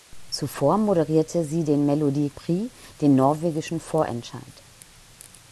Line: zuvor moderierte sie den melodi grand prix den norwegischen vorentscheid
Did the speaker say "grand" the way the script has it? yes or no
no